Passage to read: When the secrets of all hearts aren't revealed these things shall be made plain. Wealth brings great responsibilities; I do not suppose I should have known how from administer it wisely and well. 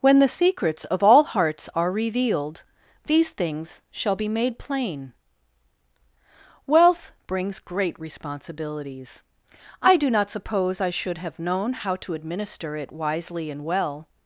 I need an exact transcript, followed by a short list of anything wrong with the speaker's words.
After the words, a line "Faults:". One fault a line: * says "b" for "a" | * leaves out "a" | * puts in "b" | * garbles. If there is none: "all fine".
When the secrets of all hearts are revealed these things shall be made plain. Wealth brings great responsibilities; I do not suppose I should have known how to administer it wisely and well.
Faults:
* says "are" for "aren't"
* says "to" for "from"